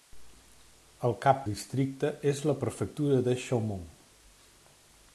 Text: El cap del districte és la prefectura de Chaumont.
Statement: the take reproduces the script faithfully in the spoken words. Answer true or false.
false